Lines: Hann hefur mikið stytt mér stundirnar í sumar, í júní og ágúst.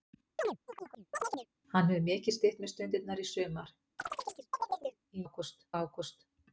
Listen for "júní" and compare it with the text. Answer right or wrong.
wrong